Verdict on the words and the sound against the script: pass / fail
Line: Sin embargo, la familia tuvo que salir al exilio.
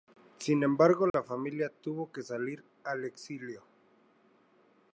fail